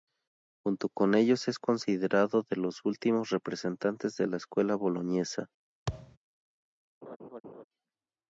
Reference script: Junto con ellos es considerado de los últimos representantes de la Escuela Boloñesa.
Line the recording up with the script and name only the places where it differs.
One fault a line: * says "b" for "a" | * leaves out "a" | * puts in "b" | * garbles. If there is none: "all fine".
all fine